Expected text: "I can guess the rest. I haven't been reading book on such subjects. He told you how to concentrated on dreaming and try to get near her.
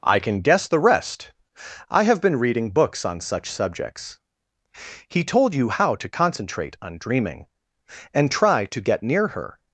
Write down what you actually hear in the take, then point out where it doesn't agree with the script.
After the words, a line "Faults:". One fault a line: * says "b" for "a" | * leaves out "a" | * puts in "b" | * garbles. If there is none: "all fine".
"I can guess the rest. I have been reading books on such subjects. He told you how to concentrate on dreaming and try to get near her.
Faults:
* says "have" for "haven't"
* says "books" for "book"
* says "concentrate" for "concentrated"